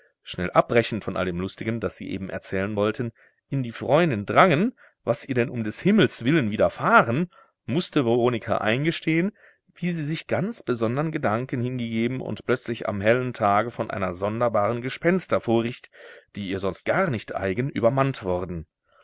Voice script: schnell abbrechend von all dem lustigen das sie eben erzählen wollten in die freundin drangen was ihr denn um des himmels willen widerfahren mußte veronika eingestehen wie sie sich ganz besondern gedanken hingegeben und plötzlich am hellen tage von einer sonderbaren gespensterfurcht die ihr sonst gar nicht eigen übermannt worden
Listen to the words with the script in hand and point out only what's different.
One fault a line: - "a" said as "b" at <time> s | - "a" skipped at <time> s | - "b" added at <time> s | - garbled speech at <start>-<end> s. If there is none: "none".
none